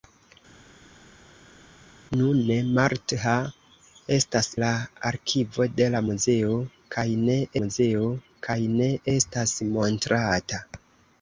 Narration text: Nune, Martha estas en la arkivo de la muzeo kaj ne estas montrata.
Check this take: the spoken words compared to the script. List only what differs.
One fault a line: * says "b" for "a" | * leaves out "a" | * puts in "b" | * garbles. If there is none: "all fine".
* leaves out "en"
* puts in "muzeo kaj ne"